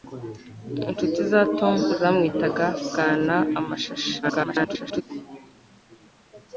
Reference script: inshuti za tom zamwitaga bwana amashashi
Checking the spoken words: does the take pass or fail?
fail